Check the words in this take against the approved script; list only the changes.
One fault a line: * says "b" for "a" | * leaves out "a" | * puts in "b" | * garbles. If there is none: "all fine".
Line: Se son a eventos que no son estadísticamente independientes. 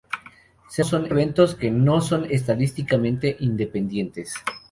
all fine